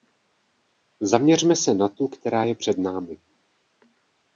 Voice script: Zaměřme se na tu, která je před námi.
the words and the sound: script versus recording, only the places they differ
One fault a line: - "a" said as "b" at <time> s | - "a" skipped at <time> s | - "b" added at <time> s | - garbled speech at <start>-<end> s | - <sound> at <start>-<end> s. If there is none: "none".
none